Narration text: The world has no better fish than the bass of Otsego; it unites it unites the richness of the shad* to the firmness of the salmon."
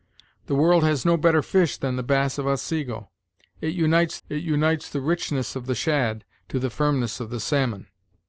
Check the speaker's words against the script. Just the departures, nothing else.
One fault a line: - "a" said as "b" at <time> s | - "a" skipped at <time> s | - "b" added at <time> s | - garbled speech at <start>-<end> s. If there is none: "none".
none